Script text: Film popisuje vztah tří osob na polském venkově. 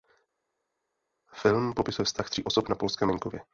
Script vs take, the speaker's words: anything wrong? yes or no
no